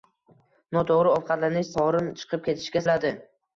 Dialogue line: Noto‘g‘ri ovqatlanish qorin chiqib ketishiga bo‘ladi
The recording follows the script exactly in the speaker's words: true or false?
true